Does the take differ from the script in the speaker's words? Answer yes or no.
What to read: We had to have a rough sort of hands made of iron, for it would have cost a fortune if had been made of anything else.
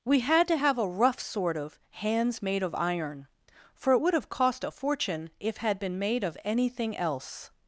no